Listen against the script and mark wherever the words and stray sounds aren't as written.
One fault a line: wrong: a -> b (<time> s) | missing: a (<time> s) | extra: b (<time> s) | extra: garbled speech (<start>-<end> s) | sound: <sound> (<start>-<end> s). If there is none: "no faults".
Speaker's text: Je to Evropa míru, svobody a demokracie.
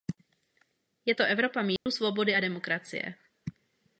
sound: dropout (1.8-1.9 s)